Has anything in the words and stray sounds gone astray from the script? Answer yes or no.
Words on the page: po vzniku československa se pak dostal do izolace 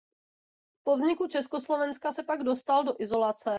no